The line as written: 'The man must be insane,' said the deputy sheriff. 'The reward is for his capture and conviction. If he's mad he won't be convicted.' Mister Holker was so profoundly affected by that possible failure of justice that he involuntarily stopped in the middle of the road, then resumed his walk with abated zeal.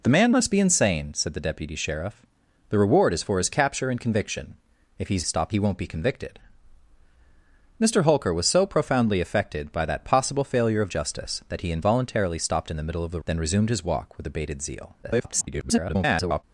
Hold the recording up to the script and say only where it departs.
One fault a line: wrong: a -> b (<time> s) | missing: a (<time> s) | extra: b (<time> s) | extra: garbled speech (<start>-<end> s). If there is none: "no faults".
wrong: mad -> stopped (5.2 s)
missing: road (13.2 s)
extra: garbled speech (15.0-16.4 s)